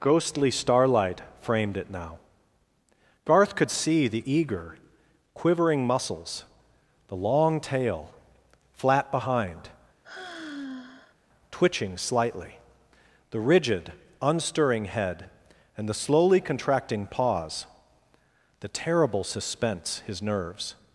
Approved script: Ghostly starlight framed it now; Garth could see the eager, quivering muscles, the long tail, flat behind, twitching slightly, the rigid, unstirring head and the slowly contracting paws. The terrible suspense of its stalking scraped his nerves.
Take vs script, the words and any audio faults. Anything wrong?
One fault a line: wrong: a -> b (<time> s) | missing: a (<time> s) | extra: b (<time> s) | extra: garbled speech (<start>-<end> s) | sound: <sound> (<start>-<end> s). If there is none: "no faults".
sound: sigh (10.0-11.2 s)
missing: of its stalking scraped (20.0 s)